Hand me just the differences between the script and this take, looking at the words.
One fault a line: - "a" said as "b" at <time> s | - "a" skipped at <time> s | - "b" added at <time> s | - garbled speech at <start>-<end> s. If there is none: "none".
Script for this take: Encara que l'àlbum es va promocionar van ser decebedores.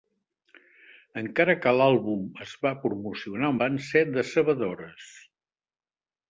none